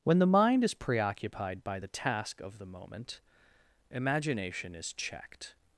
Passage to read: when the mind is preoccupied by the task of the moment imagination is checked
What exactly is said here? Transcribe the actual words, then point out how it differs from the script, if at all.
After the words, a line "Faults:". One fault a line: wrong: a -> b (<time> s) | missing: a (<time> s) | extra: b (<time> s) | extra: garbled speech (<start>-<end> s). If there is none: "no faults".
when the mind is preoccupied by the task of the moment imagination is checked
Faults:
no faults